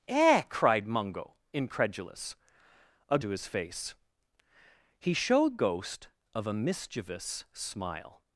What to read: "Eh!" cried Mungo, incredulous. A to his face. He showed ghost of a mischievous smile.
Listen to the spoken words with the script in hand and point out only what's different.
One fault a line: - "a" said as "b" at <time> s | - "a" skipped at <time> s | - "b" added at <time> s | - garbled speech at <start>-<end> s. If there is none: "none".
none